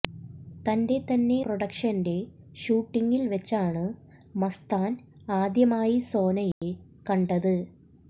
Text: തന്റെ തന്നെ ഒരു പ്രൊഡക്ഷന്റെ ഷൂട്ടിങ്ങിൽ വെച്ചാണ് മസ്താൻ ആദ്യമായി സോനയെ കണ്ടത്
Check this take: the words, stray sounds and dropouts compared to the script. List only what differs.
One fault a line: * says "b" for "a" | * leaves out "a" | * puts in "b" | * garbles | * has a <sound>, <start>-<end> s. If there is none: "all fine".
* leaves out "ഒരു"
* has a dropout, 6.5-6.6 s